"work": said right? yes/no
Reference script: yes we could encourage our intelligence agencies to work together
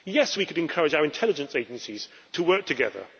yes